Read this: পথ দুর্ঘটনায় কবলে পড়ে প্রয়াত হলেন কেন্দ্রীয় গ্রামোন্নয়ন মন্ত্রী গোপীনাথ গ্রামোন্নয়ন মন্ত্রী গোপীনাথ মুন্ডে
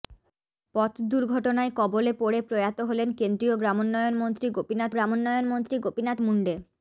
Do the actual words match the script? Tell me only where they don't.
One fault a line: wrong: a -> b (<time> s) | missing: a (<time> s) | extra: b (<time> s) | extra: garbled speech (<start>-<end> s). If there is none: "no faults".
no faults